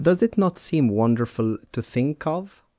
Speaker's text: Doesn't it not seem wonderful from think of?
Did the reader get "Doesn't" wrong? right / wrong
wrong